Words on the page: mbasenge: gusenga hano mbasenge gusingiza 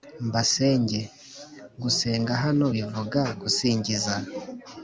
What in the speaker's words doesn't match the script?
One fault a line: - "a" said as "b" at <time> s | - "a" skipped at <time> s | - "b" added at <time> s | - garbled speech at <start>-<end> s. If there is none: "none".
- "mbasenge" said as "bivuga" at 2.7 s